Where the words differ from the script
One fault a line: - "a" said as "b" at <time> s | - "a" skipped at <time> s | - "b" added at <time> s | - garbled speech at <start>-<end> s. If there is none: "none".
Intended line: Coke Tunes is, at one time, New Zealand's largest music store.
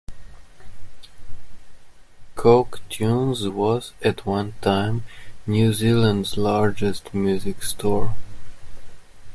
- "is" said as "was" at 3.5 s